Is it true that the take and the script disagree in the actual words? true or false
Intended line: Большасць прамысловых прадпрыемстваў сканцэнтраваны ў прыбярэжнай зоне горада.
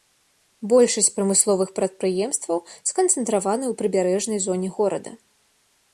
false